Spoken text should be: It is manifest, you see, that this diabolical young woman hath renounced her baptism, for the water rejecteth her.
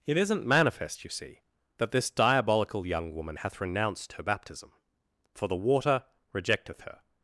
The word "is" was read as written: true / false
false